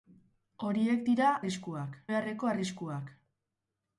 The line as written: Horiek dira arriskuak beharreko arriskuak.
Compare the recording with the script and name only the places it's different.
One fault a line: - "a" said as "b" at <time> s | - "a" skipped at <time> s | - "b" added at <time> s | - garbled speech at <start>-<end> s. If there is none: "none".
none